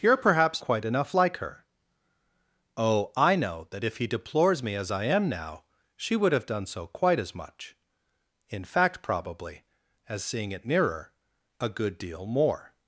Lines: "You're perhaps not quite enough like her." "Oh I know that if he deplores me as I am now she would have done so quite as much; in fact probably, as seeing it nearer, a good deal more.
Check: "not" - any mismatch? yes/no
yes